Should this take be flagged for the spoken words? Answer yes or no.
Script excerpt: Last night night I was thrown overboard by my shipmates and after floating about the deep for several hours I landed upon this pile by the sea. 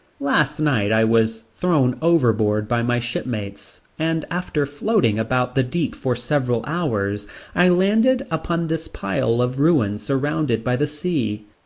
yes